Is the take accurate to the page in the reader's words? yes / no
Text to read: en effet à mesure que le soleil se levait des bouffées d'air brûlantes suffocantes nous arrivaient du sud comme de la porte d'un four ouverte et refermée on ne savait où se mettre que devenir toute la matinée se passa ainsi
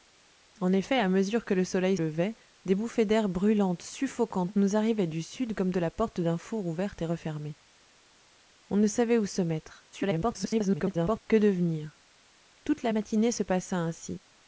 no